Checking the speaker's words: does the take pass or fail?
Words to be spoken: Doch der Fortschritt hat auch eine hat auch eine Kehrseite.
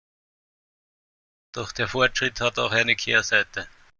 fail